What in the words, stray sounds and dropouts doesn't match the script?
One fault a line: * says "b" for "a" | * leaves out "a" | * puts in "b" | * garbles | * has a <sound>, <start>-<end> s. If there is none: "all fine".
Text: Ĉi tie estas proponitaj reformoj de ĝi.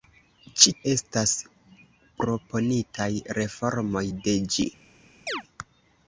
* leaves out "tie"
* has a chirp, 5.3-5.4 s